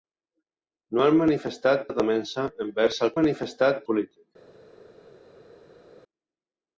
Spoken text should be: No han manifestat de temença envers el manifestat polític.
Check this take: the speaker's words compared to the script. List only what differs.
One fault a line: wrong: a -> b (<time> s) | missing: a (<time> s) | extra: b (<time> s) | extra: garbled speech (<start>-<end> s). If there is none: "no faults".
no faults